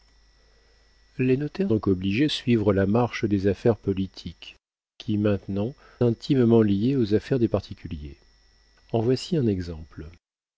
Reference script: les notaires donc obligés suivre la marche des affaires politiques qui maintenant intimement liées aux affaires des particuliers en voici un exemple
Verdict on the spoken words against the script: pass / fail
pass